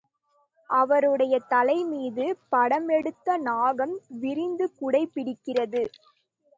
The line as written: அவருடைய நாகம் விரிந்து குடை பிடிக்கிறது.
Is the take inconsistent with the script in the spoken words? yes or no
yes